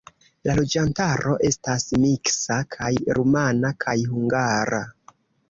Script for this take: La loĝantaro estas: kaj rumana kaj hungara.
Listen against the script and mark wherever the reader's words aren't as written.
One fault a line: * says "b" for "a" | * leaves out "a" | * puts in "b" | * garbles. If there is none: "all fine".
* puts in "miksa"